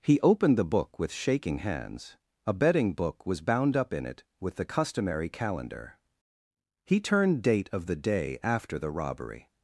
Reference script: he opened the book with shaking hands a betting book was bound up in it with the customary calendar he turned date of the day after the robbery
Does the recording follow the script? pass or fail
pass